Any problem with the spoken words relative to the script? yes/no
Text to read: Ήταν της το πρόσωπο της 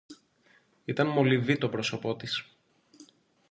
yes